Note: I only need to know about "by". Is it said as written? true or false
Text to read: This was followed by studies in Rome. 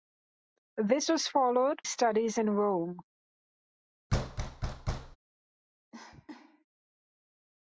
false